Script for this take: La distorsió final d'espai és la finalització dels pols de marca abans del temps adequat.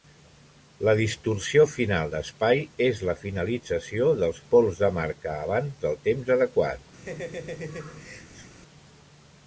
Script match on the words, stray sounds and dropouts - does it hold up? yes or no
no